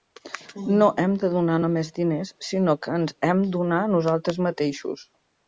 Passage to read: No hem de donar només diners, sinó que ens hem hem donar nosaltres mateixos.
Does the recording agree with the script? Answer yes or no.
no